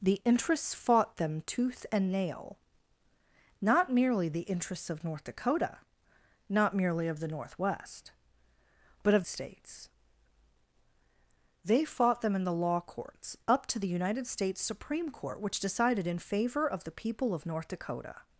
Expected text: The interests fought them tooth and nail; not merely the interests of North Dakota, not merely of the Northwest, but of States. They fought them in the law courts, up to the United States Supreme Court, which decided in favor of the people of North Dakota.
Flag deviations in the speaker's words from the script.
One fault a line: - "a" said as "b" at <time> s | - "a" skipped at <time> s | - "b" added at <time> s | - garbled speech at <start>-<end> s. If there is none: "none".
none